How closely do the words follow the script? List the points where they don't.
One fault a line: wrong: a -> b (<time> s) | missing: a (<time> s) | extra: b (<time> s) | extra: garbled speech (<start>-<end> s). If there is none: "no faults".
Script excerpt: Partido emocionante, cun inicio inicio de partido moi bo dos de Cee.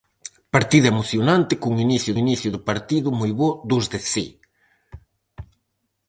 no faults